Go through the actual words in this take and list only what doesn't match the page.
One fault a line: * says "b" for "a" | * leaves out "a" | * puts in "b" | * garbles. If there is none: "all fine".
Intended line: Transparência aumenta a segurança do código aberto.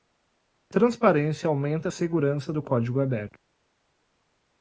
all fine